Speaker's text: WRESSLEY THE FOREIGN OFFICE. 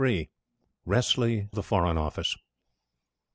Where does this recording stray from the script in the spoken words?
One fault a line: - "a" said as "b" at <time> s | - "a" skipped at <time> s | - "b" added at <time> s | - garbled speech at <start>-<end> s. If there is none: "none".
none